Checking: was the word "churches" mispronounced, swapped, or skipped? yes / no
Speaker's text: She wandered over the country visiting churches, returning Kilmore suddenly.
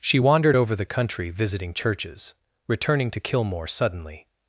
no